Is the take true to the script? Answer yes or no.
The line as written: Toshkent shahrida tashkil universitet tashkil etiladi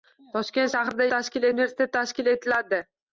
yes